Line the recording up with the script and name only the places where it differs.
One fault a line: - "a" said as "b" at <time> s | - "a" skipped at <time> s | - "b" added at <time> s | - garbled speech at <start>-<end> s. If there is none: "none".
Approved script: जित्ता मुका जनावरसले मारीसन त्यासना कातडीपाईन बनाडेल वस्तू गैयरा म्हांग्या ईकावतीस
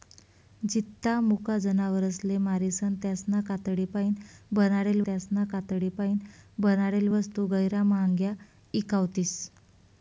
- "त्यासना कातडीपाईन बनाडेल" added at 5.0 s